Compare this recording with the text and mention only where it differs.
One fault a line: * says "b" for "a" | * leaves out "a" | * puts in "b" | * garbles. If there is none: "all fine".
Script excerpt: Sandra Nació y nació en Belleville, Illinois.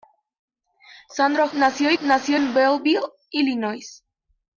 all fine